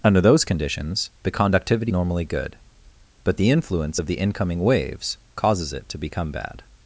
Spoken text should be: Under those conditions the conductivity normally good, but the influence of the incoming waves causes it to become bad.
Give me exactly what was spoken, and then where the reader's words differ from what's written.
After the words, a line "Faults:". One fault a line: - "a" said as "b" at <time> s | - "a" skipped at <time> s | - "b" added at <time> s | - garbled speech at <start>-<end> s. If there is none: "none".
Under those conditions the conductivity normally good, but the influence of the incoming waves causes it to become bad.
Faults:
none